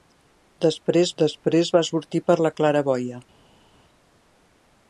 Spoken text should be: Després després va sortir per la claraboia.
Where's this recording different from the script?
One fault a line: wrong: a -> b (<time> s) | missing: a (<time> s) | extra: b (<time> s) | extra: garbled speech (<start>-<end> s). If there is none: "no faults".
no faults